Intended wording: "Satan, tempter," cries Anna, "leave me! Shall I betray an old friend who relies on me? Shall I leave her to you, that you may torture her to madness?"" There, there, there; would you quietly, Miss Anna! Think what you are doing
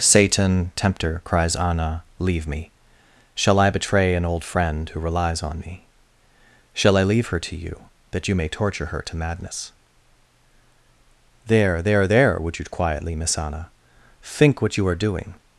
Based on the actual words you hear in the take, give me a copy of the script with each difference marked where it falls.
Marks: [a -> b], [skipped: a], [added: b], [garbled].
"Satan, tempter," cries Anna, "leave me! Shall I betray an old friend who relies on me? Shall I leave her to you, that you may torture her to madness?"" There, there, there; would you quietly, Miss Anna! Think what you are doing